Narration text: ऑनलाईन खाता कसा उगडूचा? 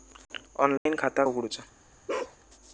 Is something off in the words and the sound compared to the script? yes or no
yes